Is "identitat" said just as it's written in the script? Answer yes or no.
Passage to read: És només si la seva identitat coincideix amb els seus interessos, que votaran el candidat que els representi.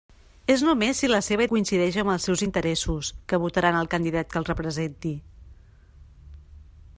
no